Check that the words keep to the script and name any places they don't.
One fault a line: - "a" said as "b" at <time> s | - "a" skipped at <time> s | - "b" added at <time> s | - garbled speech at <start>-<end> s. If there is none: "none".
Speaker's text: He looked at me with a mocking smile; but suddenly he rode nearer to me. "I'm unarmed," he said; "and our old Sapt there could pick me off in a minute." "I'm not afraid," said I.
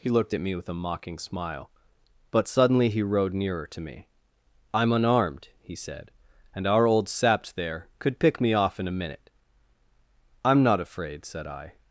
none